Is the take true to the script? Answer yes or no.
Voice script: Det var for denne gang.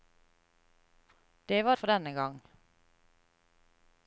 yes